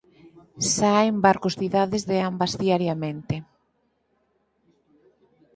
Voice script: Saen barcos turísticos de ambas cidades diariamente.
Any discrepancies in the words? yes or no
yes